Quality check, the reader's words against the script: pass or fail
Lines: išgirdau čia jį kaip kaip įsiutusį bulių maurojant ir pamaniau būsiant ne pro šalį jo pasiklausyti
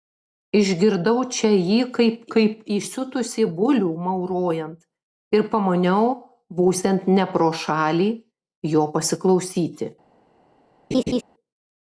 pass